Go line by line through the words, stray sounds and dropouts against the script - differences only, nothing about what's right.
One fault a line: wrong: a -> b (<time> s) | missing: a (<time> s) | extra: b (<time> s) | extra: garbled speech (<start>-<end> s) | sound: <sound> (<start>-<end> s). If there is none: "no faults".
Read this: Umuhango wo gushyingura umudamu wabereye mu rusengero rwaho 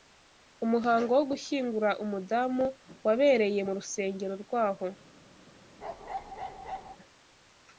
sound: bark (5.8-7.0 s)